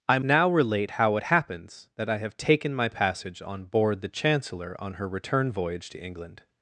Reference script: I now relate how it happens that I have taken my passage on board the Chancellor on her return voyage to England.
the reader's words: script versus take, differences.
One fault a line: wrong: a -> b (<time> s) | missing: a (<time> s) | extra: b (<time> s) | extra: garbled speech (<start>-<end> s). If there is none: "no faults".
no faults